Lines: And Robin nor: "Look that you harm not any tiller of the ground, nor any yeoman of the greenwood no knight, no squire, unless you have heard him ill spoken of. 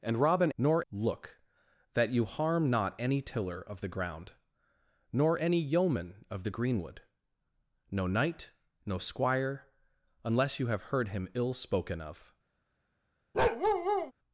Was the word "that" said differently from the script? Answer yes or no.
no